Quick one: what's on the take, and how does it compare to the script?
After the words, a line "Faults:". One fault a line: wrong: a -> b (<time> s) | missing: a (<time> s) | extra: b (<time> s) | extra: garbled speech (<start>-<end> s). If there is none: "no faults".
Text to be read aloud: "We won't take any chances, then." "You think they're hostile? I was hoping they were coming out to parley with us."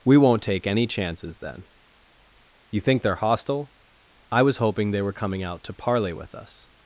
"We won't take any chances, then." "You think they're hostile? I was hoping they were coming out to parley with us."
Faults:
no faults